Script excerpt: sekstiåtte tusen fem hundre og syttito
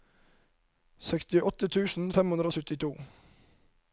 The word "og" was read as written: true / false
true